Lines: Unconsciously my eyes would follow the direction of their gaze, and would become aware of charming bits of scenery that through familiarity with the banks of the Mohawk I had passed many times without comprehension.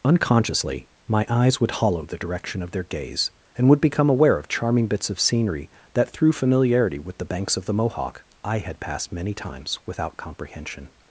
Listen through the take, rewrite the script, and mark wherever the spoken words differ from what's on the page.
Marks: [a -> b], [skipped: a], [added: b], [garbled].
Unconsciously my eyes would [follow -> hollow] the direction of their gaze, and would become aware of charming bits of scenery that through familiarity with the banks of the Mohawk I had passed many times without comprehension.